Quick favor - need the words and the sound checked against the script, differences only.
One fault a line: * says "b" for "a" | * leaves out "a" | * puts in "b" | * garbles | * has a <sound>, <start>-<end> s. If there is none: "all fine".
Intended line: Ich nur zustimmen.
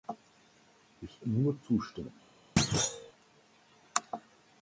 * has a thud, 2.6-3.1 s